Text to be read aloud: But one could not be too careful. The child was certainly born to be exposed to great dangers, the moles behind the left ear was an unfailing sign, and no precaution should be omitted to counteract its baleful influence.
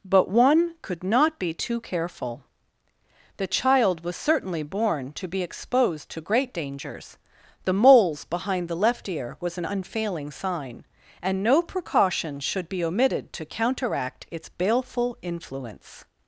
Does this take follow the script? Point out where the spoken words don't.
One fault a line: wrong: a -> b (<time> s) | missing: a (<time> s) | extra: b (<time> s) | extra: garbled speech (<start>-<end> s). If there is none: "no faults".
no faults